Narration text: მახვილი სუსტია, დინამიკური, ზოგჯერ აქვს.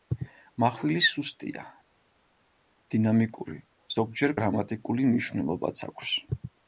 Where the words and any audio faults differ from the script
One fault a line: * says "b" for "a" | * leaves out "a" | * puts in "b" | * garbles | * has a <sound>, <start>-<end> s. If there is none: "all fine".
* puts in "გრამატიკული მნიშვნელობაც"